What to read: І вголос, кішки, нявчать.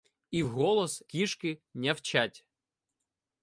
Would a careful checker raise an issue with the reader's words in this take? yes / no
no